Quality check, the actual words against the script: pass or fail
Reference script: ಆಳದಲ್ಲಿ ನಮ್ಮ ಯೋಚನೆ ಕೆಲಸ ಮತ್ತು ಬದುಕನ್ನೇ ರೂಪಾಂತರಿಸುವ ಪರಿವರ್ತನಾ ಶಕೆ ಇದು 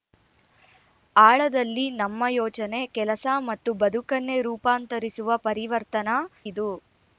fail